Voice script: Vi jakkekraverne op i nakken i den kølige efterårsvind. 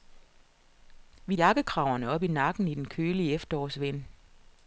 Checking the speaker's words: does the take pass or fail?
pass